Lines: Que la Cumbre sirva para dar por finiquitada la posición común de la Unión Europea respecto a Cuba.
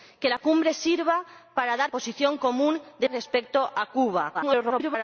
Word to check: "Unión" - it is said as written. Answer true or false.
false